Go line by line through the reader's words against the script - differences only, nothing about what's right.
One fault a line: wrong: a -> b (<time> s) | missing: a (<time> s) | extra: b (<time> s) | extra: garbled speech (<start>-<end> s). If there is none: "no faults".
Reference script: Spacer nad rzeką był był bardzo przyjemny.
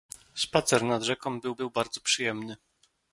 no faults